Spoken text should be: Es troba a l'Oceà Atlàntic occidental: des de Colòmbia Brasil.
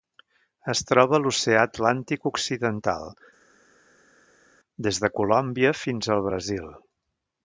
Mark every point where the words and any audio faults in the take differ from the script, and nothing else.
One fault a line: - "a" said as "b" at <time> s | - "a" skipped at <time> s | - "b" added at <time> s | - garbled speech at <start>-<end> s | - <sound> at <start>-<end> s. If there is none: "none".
- "fins al" added at 5.8 s